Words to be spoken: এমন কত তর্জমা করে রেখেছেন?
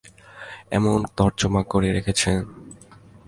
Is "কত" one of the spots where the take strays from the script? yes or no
yes